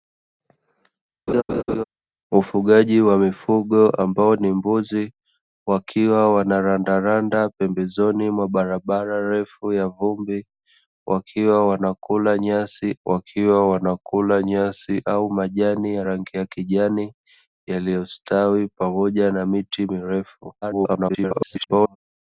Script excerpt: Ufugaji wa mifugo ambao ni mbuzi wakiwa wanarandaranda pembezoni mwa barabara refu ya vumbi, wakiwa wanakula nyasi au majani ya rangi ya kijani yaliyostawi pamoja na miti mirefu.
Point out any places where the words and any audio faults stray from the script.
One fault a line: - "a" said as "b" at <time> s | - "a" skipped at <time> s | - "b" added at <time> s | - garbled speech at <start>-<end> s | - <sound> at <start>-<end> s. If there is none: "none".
- laugh at 1.3-1.8 s
- "wakiwa wanakula nyasi" added at 13.1 s
- garbled speech at 20.6-22.0 s